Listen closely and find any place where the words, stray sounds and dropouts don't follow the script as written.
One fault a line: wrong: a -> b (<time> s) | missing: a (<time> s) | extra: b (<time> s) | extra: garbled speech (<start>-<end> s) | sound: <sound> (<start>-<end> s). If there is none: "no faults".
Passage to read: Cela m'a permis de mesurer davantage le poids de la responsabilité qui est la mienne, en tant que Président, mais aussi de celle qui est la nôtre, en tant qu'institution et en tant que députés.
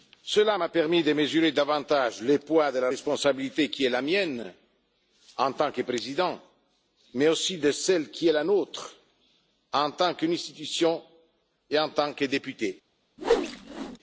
sound: whoosh (13.2-14.0 s)